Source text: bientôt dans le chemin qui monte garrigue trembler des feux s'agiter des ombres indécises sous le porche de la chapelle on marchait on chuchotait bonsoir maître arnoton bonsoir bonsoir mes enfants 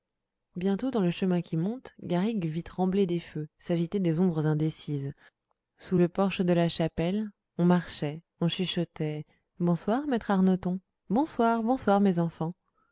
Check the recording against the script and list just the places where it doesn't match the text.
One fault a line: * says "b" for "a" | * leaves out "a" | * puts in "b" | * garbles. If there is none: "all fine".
* puts in "vit"